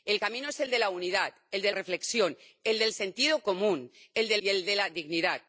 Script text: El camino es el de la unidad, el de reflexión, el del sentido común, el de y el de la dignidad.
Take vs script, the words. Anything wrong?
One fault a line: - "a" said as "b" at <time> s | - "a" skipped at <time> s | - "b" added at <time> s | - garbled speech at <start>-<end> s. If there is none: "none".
none